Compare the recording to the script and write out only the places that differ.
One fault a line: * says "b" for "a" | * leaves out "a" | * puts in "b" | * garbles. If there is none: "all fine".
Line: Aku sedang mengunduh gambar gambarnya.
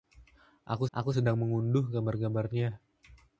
* puts in "aku"